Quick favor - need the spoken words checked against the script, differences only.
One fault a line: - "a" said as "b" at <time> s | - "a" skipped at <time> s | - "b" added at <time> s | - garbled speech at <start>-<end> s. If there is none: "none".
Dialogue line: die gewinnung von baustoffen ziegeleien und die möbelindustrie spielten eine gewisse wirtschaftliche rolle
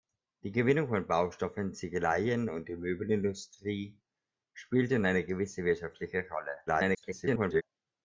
- garbled speech at 6.7-7.6 s